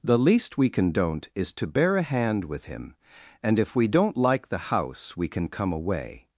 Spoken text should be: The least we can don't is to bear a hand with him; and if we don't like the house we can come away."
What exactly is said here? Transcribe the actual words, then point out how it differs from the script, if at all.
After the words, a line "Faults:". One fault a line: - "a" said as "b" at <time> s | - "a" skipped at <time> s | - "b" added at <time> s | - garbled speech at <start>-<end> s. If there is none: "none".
The least we can don't is to bear a hand with him; and if we don't like the house we can come away."
Faults:
none